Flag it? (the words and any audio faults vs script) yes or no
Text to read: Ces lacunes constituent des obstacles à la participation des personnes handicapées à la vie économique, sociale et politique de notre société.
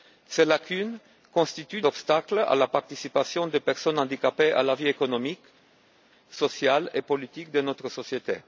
yes